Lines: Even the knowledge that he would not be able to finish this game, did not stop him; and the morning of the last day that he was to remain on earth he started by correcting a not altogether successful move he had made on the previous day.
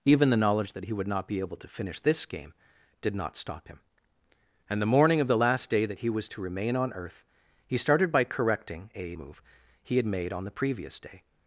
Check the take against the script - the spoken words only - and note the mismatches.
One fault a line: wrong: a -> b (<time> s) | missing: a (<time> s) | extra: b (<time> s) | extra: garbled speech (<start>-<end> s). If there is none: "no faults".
missing: not altogether successful (9.2 s)